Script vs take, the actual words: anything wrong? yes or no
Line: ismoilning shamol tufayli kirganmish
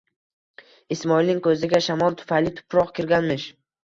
yes